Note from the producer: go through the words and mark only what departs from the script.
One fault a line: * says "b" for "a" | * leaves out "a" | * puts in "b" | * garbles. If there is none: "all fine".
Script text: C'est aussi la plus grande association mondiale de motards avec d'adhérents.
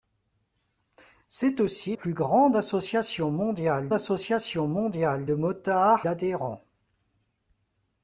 * leaves out "la"
* puts in "association mondiale"
* leaves out "avec"